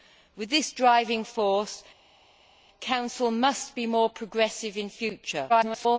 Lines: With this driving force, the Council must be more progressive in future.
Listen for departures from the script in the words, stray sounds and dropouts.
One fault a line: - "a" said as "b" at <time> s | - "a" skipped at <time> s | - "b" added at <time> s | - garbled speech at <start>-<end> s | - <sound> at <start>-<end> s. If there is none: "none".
- garbled speech at 5.5-6.0 s